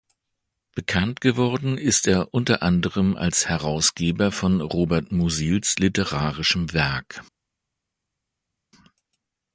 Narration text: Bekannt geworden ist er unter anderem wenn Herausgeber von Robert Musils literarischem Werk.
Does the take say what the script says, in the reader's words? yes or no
no